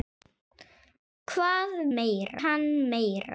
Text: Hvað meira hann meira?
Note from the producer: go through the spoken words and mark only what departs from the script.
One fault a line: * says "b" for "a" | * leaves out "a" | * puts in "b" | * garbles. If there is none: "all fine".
all fine